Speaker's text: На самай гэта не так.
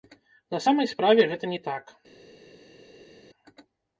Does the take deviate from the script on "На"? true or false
false